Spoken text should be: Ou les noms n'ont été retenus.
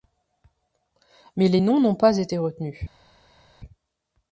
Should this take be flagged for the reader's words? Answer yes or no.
yes